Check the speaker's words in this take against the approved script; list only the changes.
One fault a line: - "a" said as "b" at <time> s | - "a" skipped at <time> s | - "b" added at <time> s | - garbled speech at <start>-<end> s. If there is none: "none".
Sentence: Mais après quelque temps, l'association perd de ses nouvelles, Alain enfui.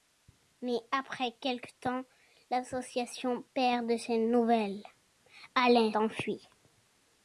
none